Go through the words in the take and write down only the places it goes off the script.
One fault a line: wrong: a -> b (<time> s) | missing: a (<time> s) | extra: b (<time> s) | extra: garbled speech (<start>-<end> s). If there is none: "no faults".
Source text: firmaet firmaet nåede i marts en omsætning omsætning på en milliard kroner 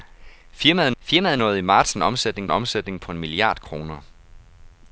no faults